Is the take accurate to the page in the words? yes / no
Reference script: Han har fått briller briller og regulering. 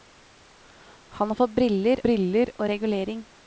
yes